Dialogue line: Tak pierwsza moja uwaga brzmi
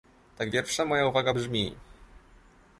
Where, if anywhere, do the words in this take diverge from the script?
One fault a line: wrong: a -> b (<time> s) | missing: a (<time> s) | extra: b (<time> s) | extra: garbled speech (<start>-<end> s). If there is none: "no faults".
no faults